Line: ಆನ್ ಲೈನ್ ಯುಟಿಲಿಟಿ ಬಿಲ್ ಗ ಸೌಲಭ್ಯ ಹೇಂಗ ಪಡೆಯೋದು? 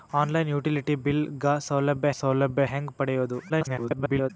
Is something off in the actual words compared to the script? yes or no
yes